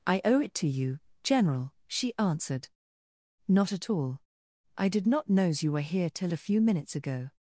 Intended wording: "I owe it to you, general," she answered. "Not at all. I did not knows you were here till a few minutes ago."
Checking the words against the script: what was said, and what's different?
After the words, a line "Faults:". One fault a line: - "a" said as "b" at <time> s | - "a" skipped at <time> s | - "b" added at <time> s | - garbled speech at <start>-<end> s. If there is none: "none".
"I owe it to you, general," she answered. "Not at all. I did not knows you were here till a few minutes ago."
Faults:
none